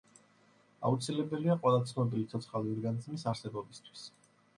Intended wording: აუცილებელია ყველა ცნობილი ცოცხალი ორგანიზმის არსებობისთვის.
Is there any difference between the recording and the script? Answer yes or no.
no